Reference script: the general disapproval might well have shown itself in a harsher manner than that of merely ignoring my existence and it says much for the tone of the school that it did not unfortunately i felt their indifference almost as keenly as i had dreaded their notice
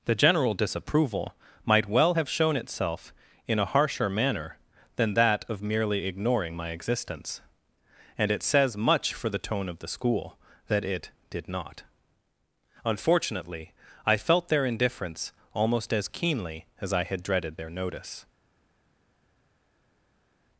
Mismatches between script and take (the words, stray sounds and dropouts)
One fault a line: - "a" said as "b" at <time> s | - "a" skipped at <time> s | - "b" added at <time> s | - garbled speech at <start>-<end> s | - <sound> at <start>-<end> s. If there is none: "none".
none